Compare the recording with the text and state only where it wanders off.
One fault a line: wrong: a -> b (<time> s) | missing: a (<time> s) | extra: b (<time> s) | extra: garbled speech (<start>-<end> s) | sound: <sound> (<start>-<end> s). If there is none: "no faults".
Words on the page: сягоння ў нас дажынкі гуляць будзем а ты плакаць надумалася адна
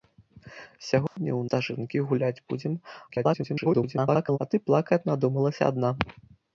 sound: dropout (1.1-1.2 s)
missing: нас (1.4 s)
extra: garbled speech (3.1-4.4 s)